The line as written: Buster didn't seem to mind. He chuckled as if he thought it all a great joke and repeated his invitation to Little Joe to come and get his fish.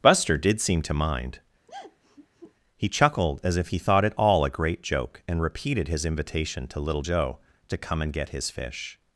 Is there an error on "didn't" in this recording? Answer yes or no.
yes